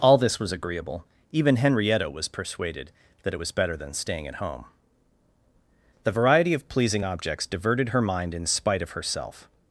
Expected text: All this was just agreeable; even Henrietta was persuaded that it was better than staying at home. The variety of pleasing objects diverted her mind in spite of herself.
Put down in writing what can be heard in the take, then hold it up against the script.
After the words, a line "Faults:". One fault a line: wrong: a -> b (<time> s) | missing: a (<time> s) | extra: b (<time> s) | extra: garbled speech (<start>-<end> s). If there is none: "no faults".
All this was agreeable; even Henrietta was persuaded that it was better than staying at home. The variety of pleasing objects diverted her mind in spite of herself.
Faults:
missing: just (0.5 s)